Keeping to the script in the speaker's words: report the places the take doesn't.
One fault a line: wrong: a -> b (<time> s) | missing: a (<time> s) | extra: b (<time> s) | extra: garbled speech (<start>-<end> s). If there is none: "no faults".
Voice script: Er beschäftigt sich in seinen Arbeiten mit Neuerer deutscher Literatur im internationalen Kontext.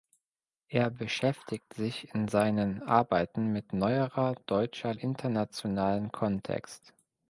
missing: Literatur im (4.9 s)